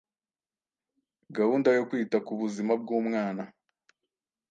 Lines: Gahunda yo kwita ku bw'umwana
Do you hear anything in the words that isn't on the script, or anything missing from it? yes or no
yes